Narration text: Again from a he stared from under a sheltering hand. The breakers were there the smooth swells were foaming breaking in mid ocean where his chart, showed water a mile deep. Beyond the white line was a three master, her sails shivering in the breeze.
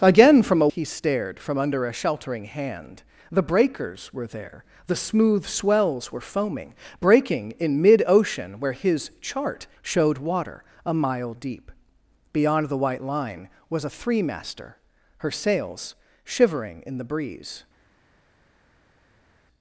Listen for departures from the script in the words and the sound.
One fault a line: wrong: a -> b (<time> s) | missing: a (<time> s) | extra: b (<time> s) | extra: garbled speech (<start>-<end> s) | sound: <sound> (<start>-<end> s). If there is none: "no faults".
no faults